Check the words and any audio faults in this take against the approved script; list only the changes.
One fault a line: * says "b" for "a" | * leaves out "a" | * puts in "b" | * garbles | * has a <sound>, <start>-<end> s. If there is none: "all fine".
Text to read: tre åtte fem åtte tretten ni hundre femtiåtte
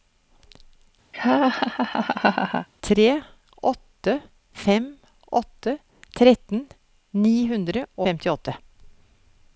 * has a laugh, 1.1-2.7 s